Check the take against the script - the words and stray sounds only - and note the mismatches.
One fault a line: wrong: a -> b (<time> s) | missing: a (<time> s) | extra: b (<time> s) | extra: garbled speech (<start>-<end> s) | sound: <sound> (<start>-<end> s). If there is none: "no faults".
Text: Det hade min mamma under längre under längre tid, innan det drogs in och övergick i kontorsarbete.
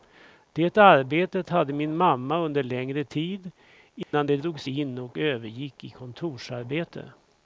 extra: arbetet (0.8 s)
missing: under längre (3.0 s)
sound: dropout (4.0-4.1 s)